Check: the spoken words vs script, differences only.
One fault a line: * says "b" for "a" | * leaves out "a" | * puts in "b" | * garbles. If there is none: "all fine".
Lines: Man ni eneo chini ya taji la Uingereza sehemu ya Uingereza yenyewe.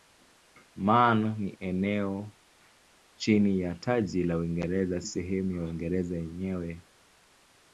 all fine